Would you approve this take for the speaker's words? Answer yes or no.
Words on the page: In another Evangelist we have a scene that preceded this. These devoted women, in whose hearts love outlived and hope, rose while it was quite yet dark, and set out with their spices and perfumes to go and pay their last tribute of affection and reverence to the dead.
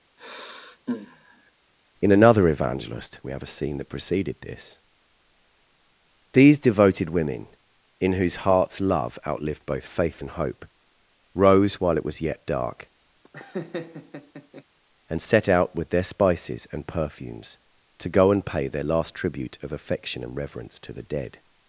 no